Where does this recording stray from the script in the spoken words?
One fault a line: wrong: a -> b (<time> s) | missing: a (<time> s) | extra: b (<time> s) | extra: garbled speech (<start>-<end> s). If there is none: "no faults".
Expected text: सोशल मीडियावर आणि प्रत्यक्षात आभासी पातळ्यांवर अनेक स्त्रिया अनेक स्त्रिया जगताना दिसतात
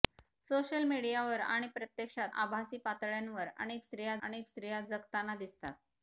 no faults